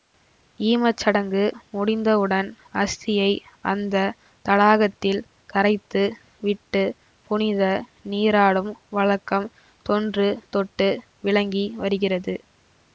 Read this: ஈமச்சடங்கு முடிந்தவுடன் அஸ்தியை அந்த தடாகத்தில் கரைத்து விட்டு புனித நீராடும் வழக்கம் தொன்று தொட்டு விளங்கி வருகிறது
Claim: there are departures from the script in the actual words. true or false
false